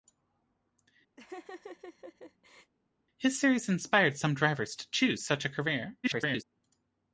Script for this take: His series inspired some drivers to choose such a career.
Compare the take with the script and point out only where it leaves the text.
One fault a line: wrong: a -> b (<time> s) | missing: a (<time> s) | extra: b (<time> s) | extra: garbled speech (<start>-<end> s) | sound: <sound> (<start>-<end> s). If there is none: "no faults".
sound: laugh (1.2-2.7 s)
extra: garbled speech (6.0-6.4 s)